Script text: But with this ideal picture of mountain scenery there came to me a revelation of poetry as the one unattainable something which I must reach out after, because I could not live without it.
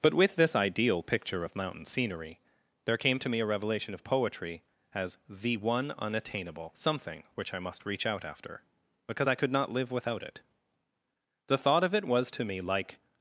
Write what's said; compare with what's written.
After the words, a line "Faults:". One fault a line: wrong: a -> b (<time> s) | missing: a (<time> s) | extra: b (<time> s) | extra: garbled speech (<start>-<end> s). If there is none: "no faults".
But with this ideal picture of mountain scenery there came to me a revelation of poetry as the one unattainable something which I must reach out after, because I could not live without it. The thought of it was to me like
Faults:
extra: The thought of it was to me like (11.5 s)